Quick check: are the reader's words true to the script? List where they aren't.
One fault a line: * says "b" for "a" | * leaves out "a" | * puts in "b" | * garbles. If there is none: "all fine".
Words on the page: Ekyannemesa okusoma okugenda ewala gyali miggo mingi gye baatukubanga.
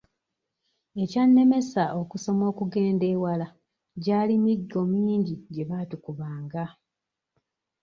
all fine